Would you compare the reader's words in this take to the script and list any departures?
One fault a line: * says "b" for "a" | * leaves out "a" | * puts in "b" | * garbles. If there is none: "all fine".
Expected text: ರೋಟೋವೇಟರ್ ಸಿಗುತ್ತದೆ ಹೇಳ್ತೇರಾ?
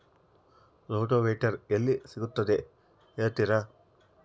* puts in "ಎಲ್ಲಿ"